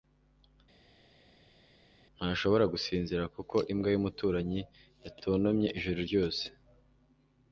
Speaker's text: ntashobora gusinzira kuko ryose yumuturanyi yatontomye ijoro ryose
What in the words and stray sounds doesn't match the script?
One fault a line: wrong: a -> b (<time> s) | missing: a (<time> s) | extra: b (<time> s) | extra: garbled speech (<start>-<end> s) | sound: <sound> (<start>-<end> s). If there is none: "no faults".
wrong: ryose -> imbwa (3.7 s)